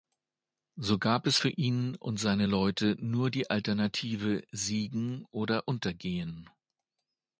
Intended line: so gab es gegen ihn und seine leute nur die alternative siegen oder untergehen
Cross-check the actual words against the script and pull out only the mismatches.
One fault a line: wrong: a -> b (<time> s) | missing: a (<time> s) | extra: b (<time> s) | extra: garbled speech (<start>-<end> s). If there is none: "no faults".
wrong: gegen -> für (1.3 s)